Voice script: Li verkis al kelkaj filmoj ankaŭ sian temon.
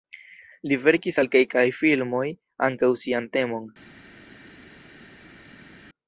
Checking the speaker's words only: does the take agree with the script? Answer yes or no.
yes